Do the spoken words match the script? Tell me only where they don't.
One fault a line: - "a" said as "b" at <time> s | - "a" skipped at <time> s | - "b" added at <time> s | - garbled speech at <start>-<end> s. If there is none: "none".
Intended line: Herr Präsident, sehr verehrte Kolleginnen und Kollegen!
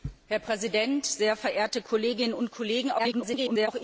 - garbled speech at 3.0-3.7 s